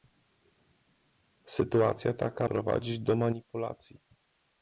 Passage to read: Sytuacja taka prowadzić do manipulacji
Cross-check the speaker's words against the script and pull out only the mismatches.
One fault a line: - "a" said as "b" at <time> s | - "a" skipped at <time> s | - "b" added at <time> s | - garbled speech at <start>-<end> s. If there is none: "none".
none